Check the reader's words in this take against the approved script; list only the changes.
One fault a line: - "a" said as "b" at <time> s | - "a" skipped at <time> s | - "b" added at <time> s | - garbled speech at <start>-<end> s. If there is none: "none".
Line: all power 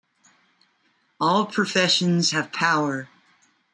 - "professions have" added at 1.4 s